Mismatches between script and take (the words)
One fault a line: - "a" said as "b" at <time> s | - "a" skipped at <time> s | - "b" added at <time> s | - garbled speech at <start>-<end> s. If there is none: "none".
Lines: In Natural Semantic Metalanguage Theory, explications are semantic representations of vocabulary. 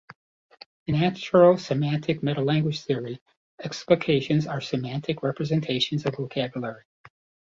none